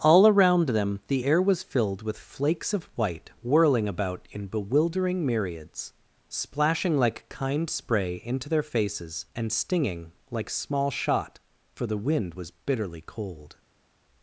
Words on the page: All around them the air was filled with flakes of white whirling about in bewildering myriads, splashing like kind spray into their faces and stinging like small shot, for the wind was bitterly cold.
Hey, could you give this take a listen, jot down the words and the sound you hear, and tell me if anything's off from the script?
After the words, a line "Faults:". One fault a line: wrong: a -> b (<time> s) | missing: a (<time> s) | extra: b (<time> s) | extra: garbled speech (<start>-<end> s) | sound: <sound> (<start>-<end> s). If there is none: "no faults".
All around them the air was filled with flakes of white whirling about in bewildering myriads, splashing like kind spray into their faces and stinging like small shot, for the wind was bitterly cold.
Faults:
no faults